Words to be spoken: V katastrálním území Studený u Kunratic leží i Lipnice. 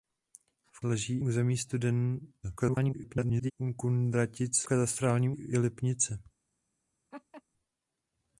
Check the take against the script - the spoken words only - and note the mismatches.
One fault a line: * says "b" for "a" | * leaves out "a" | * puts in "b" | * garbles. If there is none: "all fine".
* says "leží" for "katastrálním"
* garbles
* says "katastrálním" for "leží"